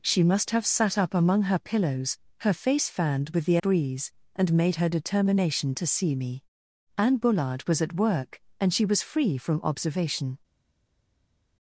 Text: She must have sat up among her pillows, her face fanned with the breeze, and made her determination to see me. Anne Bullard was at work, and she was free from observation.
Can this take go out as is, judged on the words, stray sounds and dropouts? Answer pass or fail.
pass